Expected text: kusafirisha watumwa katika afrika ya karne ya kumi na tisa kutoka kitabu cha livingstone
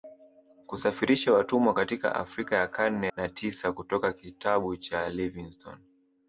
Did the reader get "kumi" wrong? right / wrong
wrong